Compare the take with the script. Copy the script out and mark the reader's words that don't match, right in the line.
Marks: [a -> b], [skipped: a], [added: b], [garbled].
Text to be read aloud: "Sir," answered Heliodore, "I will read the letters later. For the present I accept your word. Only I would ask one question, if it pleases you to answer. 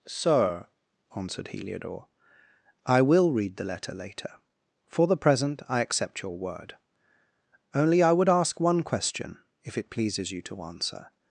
"Sir," answered Heliodore, "I will read the [letters -> letter] later. For the present I accept your word. Only I would ask one question, if it pleases you to answer.